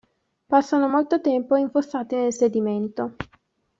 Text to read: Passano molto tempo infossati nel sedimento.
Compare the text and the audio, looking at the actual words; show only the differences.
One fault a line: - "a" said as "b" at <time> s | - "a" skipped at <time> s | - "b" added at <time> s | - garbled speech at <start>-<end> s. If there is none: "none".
none